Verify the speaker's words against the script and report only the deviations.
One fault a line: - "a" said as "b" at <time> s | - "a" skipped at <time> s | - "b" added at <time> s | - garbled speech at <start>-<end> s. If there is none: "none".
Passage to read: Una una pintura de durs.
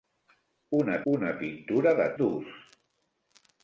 none